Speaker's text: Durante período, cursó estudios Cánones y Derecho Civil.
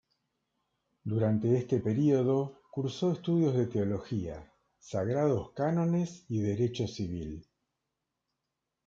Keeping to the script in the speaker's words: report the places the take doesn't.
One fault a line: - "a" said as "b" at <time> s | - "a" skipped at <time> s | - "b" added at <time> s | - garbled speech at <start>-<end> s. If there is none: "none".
- "este" added at 1.6 s
- "de Teología Sagrados" added at 3.5 s